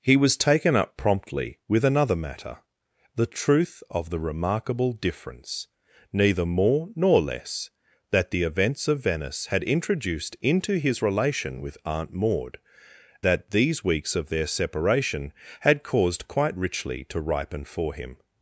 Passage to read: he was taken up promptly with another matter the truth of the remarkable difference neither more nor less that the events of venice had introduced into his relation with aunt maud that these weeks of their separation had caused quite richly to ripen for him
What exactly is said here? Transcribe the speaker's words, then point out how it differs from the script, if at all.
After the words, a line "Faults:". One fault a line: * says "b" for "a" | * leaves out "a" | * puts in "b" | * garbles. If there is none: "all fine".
he was taken up promptly with another matter the truth of the remarkable difference neither more nor less that the events of venice had introduced into his relation with aunt maud that these weeks of their separation had caused quite richly to ripen for him
Faults:
all fine